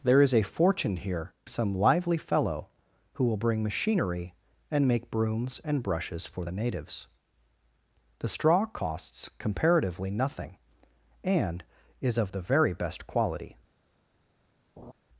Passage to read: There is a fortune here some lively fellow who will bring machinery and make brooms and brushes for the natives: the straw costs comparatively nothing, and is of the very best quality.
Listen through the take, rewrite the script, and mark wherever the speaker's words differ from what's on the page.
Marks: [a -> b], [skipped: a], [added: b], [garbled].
There is a fortune here some lively fellow who will bring machinery and make brooms and brushes for the natives: the straw costs comparatively nothing, and is of the very best quality.